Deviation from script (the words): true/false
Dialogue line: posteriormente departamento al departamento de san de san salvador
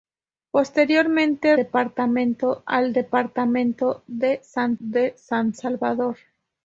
false